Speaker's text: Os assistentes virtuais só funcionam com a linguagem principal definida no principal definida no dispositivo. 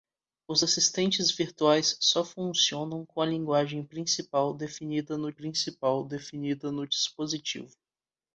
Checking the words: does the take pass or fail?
pass